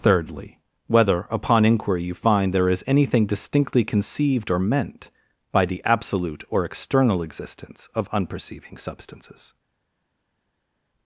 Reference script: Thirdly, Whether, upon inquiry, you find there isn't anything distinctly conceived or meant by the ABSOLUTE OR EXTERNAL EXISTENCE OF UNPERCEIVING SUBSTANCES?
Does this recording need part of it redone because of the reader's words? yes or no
yes